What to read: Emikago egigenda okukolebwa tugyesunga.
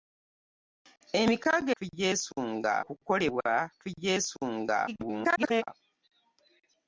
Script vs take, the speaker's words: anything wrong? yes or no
yes